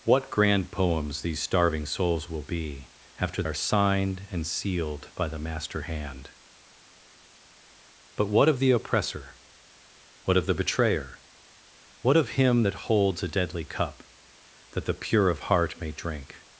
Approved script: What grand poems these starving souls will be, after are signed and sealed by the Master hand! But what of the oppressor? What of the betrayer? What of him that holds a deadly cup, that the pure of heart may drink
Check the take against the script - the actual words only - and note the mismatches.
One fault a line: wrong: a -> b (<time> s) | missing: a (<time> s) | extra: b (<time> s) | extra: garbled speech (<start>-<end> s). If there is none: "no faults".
no faults